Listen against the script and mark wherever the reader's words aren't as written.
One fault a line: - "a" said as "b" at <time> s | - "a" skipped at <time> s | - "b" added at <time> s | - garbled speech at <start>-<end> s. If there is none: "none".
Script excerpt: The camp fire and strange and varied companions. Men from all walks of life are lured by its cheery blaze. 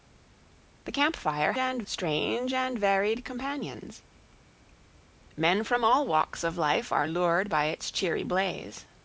none